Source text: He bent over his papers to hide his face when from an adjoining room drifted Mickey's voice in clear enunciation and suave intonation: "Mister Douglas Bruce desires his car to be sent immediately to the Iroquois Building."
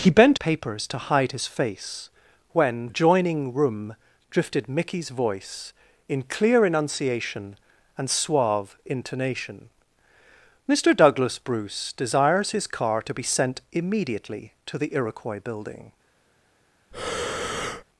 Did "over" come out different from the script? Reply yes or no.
yes